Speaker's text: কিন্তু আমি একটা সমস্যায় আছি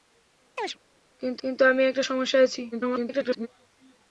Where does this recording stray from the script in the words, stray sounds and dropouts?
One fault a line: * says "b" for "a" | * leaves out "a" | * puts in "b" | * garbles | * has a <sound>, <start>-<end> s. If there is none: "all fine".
* has a chirp, 0.6-0.8 s
* puts in "কিন্তু"
* garbles